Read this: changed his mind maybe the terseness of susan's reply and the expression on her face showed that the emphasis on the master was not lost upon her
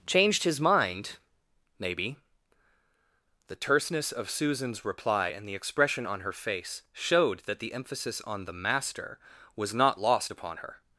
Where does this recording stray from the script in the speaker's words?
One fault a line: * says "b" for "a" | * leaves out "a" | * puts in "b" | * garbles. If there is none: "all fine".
all fine